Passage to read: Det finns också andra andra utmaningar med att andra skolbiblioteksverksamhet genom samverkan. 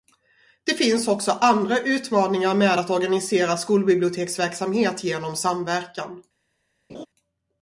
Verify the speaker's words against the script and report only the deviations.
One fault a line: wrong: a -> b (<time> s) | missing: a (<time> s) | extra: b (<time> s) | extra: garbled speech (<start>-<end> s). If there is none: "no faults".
missing: andra (1.8 s)
wrong: andra -> organisera (2.9 s)